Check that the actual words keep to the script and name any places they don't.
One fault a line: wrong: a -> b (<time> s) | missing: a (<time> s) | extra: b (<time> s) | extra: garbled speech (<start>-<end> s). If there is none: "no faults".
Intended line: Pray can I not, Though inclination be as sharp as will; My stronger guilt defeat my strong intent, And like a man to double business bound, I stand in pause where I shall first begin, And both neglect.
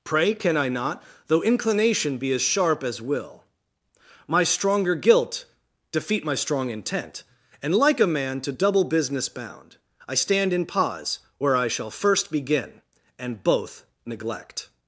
no faults